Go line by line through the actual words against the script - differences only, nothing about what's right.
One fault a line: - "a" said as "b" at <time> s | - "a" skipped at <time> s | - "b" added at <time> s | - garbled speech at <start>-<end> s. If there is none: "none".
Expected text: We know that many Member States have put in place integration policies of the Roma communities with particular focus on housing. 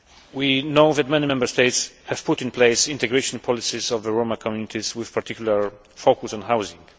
none